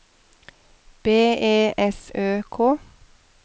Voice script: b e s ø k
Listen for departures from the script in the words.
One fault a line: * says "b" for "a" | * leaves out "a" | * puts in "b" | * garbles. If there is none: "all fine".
all fine